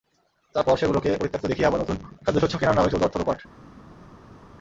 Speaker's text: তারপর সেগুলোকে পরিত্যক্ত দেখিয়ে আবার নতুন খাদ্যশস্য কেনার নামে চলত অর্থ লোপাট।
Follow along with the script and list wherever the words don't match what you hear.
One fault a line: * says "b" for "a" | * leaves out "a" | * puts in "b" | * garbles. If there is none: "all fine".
all fine